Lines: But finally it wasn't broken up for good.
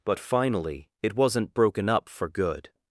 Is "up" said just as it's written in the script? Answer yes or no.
yes